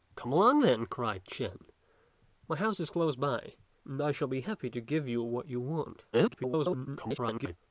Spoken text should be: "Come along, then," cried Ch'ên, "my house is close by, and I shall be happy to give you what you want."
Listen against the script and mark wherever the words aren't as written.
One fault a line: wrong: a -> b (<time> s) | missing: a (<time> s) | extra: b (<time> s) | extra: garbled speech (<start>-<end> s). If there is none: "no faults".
extra: garbled speech (6.1-7.6 s)